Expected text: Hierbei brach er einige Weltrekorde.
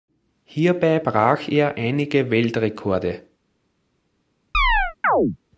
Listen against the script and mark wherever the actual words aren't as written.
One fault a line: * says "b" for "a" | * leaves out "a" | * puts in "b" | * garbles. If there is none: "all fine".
all fine